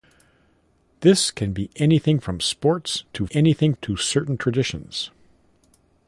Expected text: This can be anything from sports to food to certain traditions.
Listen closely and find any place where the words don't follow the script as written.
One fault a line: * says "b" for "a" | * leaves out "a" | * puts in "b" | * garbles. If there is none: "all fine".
* says "anything" for "food"